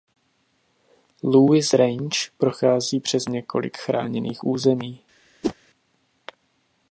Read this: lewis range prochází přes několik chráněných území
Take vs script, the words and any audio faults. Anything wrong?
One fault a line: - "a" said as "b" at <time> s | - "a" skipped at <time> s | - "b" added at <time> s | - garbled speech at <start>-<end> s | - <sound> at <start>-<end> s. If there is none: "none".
- whoosh at 5.4-5.5 s